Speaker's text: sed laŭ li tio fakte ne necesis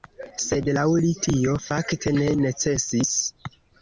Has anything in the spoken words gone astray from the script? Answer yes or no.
no